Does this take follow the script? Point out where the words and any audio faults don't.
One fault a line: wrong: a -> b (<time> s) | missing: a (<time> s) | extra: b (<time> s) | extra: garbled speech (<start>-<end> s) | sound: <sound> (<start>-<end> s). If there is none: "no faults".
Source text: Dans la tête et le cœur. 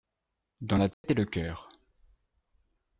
sound: dropout (0.9-1.0 s)